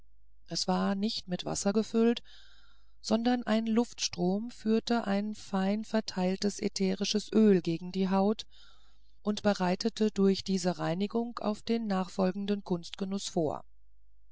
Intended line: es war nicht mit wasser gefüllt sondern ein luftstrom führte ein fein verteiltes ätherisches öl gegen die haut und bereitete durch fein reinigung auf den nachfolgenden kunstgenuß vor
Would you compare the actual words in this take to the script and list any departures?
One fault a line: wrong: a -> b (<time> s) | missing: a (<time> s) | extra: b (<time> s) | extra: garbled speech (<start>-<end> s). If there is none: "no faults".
wrong: fein -> diese (10.4 s)